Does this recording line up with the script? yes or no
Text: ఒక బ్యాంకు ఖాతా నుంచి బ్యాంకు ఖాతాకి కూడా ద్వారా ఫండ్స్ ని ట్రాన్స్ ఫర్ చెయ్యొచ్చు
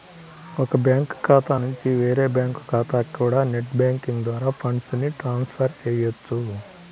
no